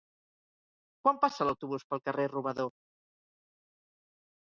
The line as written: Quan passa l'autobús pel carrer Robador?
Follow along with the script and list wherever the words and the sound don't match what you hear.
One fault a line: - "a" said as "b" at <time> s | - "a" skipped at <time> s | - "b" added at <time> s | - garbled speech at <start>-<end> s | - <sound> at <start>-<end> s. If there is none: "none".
none